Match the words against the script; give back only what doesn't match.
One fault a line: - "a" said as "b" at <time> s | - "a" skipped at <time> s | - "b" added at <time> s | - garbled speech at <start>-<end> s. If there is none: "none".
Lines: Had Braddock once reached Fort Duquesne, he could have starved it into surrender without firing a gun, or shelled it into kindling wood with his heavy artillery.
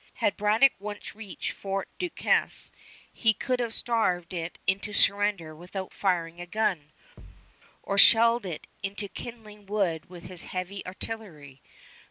none